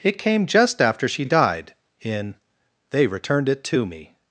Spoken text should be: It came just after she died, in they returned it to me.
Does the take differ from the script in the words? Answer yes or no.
no